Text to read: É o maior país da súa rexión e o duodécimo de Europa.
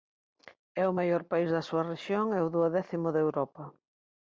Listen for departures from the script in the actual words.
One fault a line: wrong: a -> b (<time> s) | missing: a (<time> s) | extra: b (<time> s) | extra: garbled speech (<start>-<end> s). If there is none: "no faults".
no faults